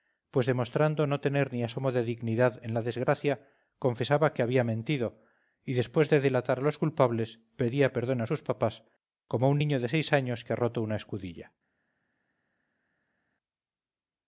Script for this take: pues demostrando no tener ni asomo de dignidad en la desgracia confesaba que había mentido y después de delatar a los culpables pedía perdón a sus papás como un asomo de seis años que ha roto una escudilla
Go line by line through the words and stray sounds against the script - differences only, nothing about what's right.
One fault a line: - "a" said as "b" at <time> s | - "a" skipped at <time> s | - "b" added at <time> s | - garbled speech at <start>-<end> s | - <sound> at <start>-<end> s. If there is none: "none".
- "asomo" said as "niño" at 9.6 s